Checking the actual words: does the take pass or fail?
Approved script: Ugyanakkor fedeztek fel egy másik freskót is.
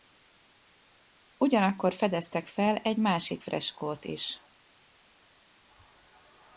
pass